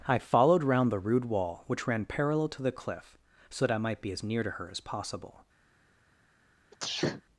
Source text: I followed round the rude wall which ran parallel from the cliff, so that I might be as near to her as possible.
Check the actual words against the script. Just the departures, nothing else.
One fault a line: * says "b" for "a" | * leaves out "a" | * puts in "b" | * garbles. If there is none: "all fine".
* says "to" for "from"